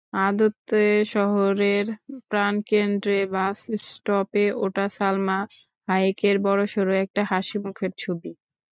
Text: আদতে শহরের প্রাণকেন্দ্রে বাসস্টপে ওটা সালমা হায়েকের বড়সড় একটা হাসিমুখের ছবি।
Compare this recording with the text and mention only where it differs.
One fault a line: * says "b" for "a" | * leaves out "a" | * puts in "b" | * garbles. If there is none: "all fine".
all fine